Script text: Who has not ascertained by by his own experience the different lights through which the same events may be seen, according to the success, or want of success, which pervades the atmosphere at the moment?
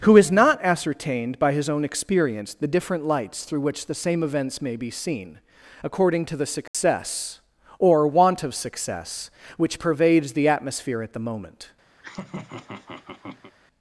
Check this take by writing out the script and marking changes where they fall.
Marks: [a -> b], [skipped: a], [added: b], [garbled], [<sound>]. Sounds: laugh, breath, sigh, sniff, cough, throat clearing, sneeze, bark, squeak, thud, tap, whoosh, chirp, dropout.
Who has not ascertained by [skipped: by] his own experience the different lights through which the same events may be seen, according to the success, [dropout] or want of success, which pervades the atmosphere at the moment? [laugh]